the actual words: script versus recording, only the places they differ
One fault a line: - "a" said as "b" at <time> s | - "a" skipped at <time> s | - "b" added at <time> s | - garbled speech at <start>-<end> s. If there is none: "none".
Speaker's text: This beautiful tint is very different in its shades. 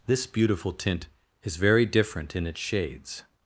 none